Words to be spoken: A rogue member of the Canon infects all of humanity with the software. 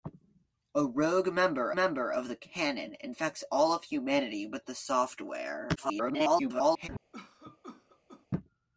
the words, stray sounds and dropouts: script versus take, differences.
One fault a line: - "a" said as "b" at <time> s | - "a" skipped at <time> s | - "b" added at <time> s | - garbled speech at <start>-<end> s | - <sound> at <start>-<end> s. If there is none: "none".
- "member" added at 1.7 s
- garbled speech at 5.8-6.9 s
- cough at 7.1-8.3 s